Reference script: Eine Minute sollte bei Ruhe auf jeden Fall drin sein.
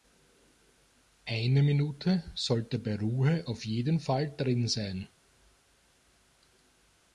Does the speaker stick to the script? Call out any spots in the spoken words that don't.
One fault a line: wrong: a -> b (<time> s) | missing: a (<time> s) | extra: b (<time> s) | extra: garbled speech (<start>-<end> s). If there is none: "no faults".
no faults